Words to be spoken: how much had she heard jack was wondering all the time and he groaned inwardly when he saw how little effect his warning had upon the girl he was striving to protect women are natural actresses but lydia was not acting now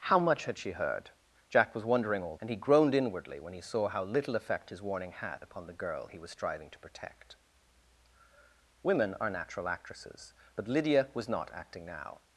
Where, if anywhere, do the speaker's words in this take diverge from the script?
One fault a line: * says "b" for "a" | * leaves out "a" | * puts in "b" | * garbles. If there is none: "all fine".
* leaves out "the time"